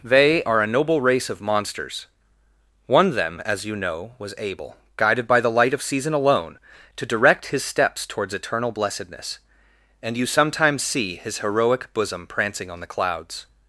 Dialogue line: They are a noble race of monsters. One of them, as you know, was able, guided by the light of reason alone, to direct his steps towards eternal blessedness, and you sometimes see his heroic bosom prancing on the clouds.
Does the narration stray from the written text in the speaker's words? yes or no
yes